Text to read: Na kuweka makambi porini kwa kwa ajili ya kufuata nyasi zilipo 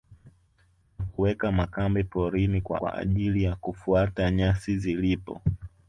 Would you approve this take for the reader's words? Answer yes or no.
yes